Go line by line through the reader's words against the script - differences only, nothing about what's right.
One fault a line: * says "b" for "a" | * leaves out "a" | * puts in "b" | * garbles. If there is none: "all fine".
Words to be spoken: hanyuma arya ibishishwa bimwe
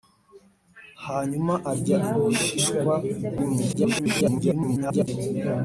* garbles